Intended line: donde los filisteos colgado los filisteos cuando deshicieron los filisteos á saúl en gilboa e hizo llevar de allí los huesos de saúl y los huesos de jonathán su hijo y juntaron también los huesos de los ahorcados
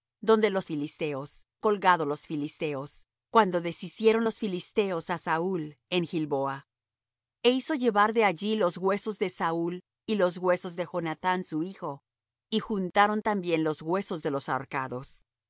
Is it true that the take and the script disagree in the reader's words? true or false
false